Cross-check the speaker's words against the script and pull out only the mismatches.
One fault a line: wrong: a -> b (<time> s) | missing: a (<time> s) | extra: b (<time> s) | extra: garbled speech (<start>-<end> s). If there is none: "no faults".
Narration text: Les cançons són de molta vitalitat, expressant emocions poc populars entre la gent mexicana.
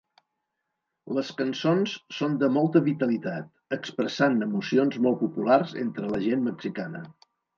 wrong: poc -> molt (5.1 s)